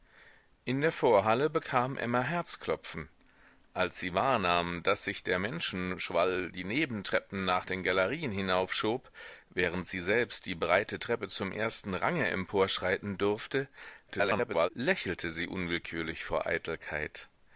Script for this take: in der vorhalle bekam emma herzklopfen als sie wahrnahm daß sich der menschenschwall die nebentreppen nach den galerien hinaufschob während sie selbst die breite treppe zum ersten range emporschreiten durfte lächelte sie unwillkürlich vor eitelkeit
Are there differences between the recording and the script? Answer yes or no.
yes